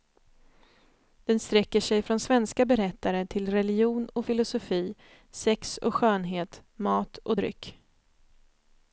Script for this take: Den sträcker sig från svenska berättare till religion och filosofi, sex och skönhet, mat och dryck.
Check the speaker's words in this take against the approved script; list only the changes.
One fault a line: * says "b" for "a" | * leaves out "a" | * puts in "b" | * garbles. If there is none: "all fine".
all fine